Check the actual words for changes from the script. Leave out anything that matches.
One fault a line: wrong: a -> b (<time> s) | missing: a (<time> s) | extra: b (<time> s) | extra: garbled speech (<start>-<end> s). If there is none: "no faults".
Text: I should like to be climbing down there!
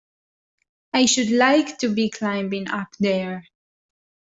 wrong: down -> up (2.7 s)